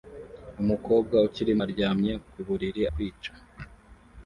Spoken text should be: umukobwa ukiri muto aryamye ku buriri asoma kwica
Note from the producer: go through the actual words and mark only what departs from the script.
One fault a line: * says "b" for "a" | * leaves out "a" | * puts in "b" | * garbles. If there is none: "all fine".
* leaves out "muto"
* leaves out "asoma"